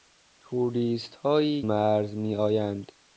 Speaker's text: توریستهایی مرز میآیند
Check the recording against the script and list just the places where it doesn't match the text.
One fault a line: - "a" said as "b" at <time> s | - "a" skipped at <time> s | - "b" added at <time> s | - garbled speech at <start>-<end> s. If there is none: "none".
none